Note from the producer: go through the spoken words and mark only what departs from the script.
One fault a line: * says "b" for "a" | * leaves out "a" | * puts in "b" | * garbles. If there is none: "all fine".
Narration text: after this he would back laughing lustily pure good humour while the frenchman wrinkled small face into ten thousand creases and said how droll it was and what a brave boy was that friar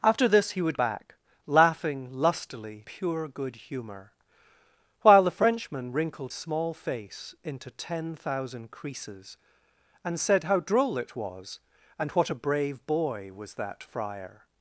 all fine